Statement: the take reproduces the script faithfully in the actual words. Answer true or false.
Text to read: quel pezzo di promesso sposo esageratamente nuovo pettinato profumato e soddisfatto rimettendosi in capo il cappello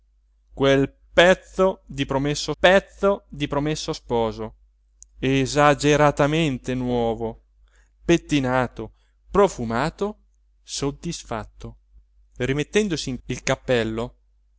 false